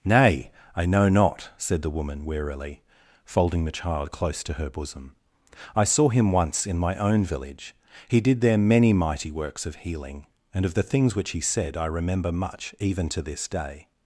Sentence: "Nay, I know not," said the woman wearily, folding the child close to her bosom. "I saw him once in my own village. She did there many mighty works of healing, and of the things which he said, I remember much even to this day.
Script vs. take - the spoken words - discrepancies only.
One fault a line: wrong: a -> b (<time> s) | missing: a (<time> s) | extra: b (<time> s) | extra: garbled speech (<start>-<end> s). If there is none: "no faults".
wrong: She -> He (8.1 s)